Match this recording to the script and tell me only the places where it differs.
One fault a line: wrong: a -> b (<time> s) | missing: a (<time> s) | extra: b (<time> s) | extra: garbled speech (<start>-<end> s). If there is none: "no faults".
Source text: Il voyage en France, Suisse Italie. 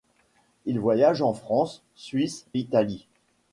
no faults